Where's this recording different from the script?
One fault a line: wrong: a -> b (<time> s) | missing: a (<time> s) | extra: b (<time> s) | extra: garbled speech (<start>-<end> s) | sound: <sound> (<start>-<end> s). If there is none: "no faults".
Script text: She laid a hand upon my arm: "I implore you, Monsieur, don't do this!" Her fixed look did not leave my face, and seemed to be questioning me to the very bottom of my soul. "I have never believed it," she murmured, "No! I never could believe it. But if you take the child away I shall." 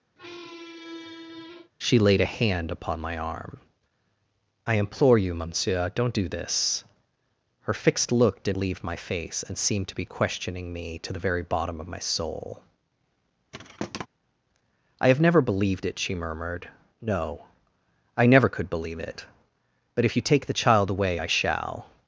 sound: squeak (0.2-1.7 s)
missing: not (8.6 s)
sound: thud (13.5-14.1 s)